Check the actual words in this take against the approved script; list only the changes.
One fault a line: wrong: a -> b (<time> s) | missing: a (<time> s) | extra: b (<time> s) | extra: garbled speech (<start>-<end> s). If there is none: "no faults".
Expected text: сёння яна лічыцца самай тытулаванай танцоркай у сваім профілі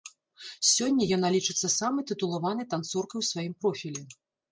no faults